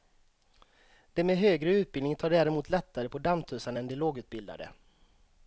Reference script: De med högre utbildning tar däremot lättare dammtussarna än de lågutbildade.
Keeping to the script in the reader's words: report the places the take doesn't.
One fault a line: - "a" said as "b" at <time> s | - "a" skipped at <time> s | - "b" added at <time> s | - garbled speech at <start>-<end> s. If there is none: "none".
- "på" added at 3.1 s